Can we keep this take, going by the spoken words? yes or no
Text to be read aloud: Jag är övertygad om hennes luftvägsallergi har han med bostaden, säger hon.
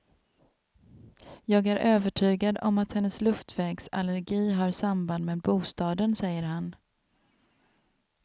no